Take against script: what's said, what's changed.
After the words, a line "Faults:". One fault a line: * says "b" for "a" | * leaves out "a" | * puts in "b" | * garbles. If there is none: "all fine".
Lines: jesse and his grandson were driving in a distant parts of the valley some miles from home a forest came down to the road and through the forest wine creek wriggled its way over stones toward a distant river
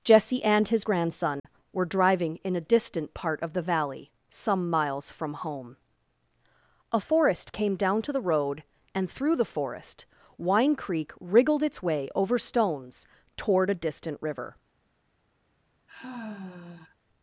jesse and his grandson were driving in a distant part of the valley some miles from home a forest came down to the road and through the forest wine creek wriggled its way over stones toward a distant river
Faults:
* says "part" for "parts"